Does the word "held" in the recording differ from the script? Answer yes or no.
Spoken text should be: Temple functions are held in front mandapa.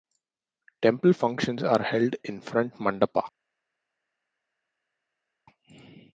no